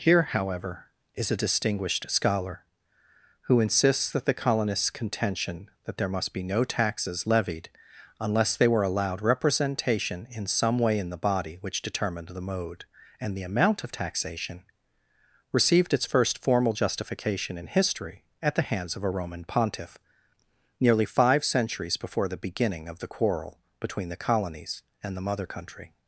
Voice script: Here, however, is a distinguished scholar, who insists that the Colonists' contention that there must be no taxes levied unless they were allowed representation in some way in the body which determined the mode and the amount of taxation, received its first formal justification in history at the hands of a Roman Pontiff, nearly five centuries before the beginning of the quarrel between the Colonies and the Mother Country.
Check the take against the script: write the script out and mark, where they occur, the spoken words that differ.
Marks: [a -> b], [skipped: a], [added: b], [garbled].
Here, however, is a distinguished scholar, who insists that the Colonists' contention that there must be no taxes levied unless they were allowed representation in some way in the body which determined the mode and the amount of taxation, received its first formal justification in history at the hands of a Roman Pontiff, nearly five centuries before the beginning of the quarrel between the Colonies and the Mother Country.